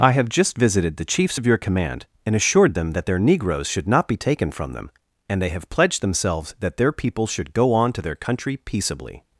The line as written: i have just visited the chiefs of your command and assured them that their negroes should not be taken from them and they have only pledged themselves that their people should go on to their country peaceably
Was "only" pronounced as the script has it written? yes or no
no